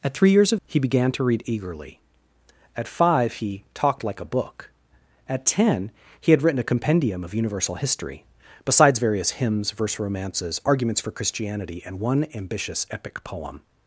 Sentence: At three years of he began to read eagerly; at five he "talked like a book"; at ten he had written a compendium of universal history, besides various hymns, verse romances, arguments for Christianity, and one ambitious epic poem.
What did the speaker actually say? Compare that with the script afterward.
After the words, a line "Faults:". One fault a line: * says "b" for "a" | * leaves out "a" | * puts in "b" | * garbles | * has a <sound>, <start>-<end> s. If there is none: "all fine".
At three years of he began to read eagerly; at five he "talked like a book"; at ten he had written a compendium of universal history, besides various hymns, verse romances, arguments for Christianity, and one ambitious epic poem.
Faults:
all fine